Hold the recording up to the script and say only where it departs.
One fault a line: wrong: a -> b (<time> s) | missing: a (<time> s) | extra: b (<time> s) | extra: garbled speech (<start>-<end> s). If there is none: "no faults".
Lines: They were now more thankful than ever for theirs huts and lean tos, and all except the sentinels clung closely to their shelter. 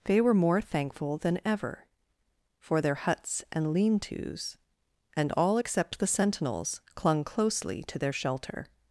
missing: now (0.3 s)
wrong: theirs -> their (2.8 s)